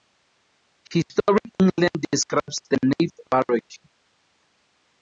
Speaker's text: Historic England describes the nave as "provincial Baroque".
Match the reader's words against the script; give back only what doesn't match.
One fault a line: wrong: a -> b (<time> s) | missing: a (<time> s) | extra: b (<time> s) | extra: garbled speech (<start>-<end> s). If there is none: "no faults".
missing: as provincial (3.1 s)